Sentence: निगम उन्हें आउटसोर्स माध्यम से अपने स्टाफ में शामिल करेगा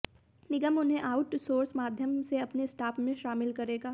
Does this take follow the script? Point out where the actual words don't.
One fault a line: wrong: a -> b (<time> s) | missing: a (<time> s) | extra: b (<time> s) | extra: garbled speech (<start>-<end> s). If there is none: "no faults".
no faults